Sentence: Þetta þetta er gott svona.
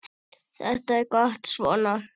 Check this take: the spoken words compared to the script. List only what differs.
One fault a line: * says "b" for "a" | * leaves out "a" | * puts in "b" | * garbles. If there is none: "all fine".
* leaves out "þetta"